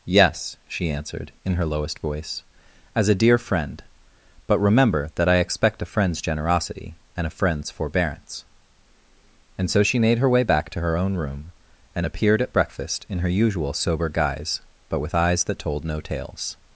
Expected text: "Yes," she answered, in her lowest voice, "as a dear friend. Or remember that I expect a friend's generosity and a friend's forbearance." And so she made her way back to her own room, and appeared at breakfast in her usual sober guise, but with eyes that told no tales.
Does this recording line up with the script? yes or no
no